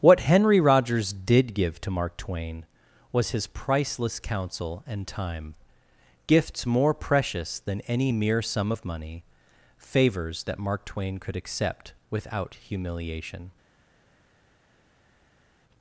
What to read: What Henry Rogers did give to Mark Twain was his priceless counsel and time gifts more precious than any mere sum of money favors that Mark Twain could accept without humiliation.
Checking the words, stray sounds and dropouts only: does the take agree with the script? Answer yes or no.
yes